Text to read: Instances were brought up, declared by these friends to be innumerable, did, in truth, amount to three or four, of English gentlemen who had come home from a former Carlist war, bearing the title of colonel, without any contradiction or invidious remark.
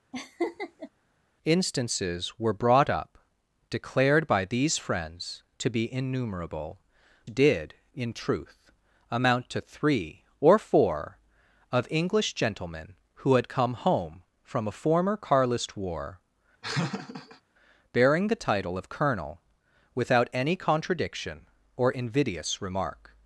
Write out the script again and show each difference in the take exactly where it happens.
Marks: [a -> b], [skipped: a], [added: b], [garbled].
Instances were brought up, declared by these friends to be innumerable, did, in truth, amount to three or four, of English gentlemen who had come home from a former Carlist war, bearing the title of colonel, without any contradiction or invidious remark.